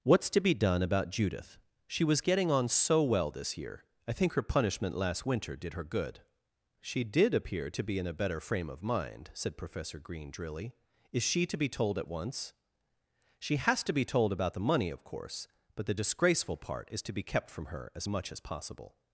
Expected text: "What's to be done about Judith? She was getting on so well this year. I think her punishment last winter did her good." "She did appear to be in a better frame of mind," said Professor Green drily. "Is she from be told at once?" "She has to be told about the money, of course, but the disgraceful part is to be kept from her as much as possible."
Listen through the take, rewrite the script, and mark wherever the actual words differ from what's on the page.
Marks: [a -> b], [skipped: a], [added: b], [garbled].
"What's to be done about Judith? She was getting on so well this year. I think her punishment last winter did her good." "She did appear to be in a better frame of mind," said Professor Green drily. "Is she [from -> to] be told at once?" "She has to be told about the money, of course, but the disgraceful part is to be kept from her as much as possible."